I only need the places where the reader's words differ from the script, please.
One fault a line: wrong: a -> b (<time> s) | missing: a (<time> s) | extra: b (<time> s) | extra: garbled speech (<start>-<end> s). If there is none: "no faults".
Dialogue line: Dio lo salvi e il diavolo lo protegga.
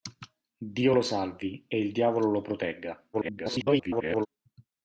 extra: garbled speech (3.1-4.3 s)